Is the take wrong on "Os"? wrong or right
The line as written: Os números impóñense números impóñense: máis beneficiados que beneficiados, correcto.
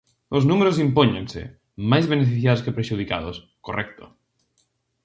right